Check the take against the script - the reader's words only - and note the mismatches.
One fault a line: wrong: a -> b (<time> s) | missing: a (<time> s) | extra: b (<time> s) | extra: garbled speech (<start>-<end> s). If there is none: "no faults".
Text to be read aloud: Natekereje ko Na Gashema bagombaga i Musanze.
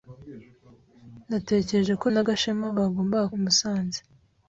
no faults